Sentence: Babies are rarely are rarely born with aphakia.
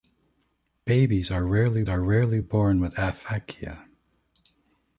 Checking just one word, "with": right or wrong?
right